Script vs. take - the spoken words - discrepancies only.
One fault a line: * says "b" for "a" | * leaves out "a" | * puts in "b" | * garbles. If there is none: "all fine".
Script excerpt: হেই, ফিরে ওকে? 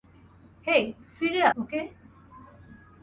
all fine